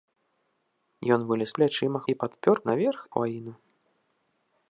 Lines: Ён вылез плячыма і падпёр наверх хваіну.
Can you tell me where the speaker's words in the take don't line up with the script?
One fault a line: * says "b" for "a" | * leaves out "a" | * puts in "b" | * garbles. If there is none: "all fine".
all fine